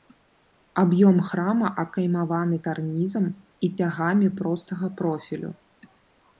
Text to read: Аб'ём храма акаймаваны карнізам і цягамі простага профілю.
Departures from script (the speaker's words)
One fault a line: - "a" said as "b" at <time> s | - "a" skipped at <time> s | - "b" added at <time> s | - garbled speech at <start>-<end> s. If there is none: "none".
none